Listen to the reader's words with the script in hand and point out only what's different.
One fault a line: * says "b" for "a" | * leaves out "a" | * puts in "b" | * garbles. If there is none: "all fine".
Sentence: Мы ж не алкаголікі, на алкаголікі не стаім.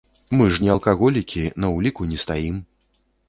* says "ўліку" for "алкаголікі"